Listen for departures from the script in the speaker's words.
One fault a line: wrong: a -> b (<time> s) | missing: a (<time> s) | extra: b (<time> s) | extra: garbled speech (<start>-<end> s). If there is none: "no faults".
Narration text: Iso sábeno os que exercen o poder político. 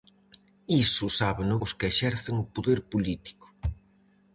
no faults